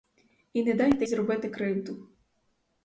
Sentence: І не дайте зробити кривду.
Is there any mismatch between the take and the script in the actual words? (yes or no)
no